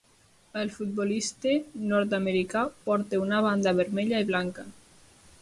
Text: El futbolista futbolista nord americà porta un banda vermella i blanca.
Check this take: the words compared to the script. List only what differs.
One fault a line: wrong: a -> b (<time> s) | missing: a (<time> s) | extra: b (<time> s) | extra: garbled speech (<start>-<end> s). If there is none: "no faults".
missing: futbolista (1.5 s)
wrong: un -> una (3.2 s)